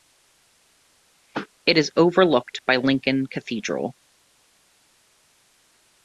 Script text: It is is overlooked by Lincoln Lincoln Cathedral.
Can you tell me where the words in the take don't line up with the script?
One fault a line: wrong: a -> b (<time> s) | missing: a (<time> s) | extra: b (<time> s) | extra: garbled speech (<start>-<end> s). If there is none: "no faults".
missing: is (1.9 s)
missing: Lincoln (3.3 s)